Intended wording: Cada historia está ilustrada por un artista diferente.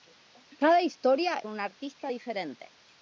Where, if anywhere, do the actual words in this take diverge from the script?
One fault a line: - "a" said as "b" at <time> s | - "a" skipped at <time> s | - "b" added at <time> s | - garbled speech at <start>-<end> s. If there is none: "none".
- "está ilustrada por" skipped at 1.4 s